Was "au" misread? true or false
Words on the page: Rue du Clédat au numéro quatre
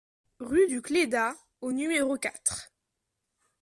false